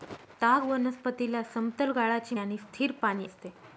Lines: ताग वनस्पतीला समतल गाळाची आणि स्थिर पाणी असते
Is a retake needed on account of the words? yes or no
no